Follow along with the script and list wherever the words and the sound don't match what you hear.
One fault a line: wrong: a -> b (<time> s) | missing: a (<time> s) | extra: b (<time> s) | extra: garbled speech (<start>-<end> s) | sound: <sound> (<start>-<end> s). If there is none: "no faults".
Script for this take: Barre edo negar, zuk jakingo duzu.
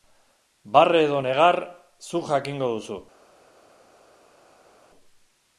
no faults